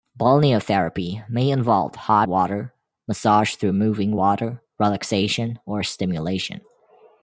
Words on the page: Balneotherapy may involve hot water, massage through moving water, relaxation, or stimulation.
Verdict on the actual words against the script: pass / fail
pass